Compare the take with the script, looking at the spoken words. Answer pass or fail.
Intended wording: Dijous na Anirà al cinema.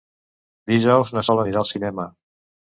fail